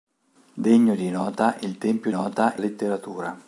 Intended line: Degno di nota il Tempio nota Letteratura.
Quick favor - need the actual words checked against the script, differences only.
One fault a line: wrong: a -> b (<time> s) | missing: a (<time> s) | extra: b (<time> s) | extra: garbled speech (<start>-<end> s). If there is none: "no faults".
no faults